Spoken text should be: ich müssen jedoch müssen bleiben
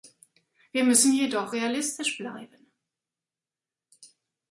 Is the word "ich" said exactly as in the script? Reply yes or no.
no